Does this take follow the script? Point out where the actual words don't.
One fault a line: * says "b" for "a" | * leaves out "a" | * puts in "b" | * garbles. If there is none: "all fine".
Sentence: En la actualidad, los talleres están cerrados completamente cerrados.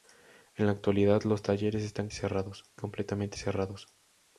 all fine